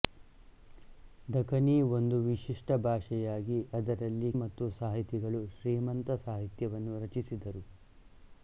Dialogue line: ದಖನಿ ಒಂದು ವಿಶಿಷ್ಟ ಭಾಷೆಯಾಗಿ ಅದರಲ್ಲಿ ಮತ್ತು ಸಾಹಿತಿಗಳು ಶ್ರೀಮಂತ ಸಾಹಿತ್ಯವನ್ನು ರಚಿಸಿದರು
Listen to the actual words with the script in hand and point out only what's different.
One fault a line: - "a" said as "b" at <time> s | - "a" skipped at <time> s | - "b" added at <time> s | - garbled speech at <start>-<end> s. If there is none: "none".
none